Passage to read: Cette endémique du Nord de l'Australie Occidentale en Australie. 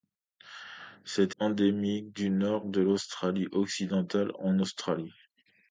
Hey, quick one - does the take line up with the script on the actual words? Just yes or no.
yes